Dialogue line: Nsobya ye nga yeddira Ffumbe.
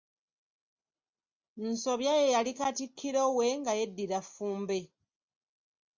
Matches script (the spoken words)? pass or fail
fail